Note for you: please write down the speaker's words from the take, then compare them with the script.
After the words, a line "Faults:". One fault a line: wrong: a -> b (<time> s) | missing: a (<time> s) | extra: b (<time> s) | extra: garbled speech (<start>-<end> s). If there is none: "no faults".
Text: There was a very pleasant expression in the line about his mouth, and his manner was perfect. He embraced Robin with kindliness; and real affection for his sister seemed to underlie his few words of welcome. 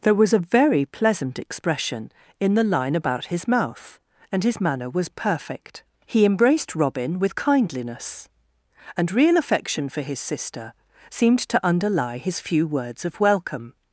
There was a very pleasant expression in the line about his mouth, and his manner was perfect. He embraced Robin with kindliness; and real affection for his sister seemed to underlie his few words of welcome.
Faults:
no faults